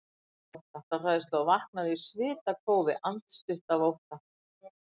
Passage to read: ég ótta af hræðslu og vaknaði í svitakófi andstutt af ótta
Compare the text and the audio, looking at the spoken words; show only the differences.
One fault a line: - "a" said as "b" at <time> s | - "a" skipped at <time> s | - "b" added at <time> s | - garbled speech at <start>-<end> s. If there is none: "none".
none